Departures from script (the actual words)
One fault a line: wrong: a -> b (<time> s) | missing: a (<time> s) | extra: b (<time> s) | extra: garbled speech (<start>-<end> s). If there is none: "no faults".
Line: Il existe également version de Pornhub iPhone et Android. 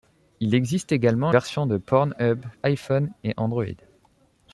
no faults